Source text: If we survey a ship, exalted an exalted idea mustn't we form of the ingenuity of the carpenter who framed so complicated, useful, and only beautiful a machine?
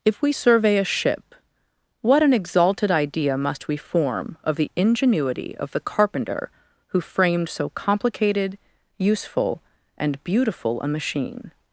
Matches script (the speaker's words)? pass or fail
fail